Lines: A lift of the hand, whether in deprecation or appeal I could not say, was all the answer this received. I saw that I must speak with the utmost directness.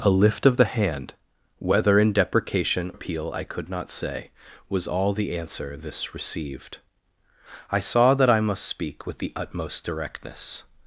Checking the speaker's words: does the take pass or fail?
fail